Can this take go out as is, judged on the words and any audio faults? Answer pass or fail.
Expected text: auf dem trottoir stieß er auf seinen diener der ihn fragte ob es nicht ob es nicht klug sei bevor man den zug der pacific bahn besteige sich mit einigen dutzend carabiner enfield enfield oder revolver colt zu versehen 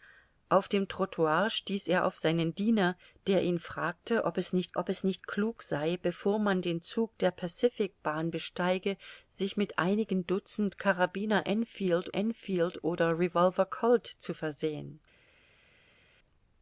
pass